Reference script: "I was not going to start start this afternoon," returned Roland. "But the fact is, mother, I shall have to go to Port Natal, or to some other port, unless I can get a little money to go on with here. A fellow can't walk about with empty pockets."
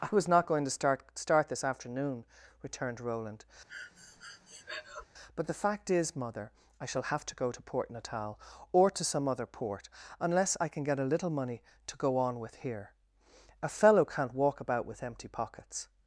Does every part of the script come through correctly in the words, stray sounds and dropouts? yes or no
no